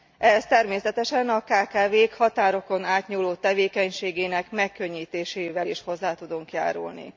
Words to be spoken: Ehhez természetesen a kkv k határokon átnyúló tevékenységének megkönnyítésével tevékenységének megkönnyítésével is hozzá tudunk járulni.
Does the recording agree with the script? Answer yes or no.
no